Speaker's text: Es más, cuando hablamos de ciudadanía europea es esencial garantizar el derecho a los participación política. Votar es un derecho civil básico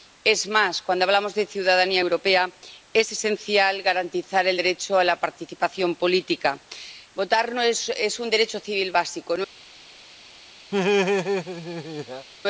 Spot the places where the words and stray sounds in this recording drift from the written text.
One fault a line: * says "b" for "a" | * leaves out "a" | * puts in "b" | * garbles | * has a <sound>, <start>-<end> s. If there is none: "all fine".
* says "la" for "los"
* has a laugh, 10.7-12.3 s